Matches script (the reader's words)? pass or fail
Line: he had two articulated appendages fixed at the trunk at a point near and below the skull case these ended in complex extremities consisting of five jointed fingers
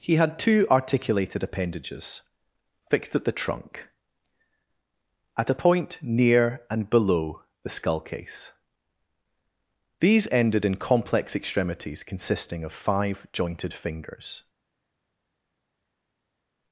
pass